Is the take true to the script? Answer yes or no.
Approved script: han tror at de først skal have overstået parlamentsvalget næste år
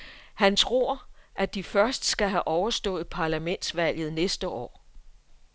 yes